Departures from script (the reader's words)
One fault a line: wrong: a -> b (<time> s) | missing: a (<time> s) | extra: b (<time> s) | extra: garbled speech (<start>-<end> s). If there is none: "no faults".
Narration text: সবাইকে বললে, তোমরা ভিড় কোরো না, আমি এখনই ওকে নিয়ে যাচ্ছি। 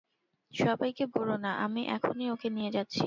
missing: বললে তোমরা ভিড় (1.1 s)